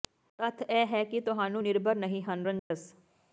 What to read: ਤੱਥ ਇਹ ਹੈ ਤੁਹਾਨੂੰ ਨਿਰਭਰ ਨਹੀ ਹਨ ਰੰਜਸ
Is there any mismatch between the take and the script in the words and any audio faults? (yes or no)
yes